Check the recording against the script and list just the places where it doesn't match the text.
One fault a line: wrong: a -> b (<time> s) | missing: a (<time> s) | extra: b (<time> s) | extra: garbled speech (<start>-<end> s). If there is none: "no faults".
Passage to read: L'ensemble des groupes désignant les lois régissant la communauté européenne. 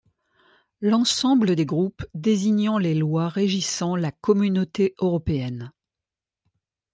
no faults